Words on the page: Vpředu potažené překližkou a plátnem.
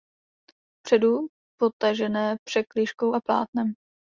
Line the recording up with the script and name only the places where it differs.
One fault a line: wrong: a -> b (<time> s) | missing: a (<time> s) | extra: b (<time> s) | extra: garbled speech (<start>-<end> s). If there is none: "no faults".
no faults